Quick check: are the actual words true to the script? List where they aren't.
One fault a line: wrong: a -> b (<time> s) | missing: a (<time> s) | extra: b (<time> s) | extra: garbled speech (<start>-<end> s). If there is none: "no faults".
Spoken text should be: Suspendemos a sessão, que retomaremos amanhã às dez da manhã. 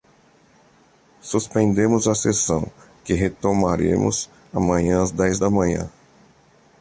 no faults